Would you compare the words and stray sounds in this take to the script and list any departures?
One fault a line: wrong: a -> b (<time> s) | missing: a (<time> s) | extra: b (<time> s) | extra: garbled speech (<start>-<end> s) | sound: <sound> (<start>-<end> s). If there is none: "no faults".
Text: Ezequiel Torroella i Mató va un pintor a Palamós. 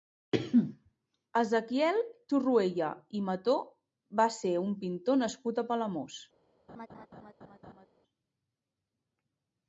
extra: ser (4.4 s)
extra: nascut (5.2 s)
sound: laugh (6.7-7.9 s)